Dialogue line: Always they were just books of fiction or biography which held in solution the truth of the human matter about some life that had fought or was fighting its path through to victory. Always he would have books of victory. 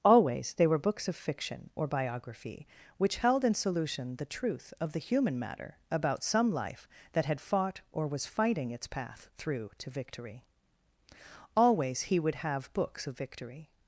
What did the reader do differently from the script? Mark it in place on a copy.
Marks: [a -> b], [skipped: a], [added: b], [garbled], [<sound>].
Always they were [skipped: just] books of fiction or biography which held in solution the truth of the human matter about some life that had fought or was fighting its path through to victory. Always he would have books of victory.